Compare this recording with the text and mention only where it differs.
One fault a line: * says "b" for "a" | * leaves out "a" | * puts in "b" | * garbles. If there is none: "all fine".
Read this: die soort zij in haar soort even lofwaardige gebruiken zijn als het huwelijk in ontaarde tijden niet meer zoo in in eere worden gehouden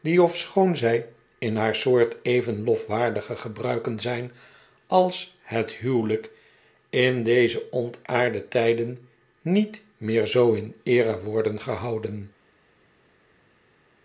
* says "ofschoon" for "soort"
* puts in "deze"
* leaves out "in"